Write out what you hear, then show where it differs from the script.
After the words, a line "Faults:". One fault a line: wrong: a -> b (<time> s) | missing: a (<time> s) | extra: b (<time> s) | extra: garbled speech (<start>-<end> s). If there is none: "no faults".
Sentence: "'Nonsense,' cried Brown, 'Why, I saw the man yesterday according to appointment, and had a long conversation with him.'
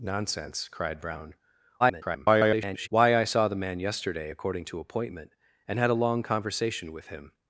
"'Nonsense,' cried Brown, [garbled] 'Why, I saw the man yesterday according to appointment, and had a long conversation with him.'
Faults:
extra: garbled speech (1.8-2.9 s)